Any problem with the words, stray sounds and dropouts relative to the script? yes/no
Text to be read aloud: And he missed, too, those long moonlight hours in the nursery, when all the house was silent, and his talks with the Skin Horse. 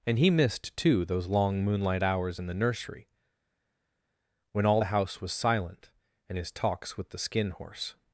no